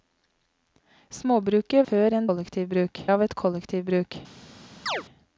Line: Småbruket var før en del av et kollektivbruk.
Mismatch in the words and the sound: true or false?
true